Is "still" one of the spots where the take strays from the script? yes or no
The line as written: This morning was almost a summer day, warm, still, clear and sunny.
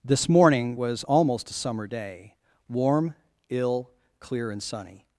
yes